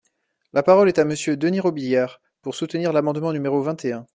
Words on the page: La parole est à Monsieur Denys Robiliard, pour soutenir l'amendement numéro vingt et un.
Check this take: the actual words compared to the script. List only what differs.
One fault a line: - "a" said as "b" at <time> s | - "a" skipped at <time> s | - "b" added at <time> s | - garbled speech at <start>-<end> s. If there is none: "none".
none